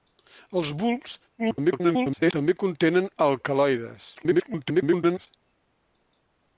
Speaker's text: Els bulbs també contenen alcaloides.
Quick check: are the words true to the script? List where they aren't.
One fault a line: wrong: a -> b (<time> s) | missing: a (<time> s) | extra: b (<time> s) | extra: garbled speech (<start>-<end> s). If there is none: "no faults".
extra: garbled speech (1.4-2.3 s)
extra: garbled speech (4.1-5.3 s)